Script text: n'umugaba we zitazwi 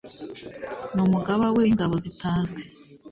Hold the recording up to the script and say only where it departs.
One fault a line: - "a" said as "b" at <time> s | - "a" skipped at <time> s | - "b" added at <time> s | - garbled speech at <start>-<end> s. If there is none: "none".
- "w'ingabo" added at 1.6 s